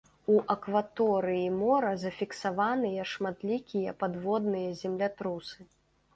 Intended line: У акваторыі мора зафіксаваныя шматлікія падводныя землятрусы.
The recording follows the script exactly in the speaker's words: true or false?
true